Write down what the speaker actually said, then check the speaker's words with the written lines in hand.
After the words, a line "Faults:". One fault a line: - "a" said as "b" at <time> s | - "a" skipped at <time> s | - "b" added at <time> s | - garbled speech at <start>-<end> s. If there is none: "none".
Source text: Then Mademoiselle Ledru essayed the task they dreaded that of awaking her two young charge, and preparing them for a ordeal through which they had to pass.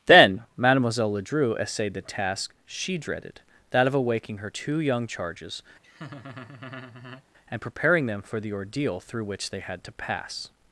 Then Mademoiselle Ledru essayed the task she dreaded that of awaking her two young charges, and preparing them for the ordeal through which they had to pass.
Faults:
- "they" said as "she" at 2.6 s
- "charge" said as "charges" at 5.0 s
- "a" said as "the" at 8.4 s